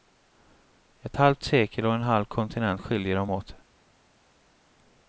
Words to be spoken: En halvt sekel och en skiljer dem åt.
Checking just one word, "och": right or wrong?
right